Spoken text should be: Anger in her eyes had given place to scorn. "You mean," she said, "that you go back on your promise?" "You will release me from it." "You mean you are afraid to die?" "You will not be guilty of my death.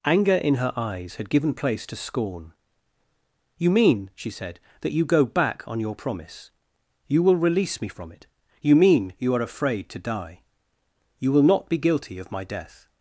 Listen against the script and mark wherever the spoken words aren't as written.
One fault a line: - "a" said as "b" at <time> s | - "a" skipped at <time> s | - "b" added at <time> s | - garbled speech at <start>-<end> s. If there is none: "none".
none